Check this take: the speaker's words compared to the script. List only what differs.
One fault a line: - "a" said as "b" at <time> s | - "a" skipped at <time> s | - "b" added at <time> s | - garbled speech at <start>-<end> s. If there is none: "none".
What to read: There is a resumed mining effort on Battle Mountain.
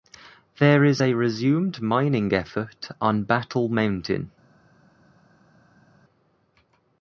none